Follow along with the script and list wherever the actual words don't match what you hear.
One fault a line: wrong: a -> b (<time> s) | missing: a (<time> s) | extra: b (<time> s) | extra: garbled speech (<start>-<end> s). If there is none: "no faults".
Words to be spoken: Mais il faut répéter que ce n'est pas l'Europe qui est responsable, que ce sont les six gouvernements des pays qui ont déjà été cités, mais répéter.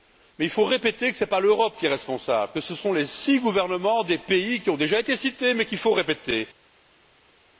extra: qu'il faut (5.7 s)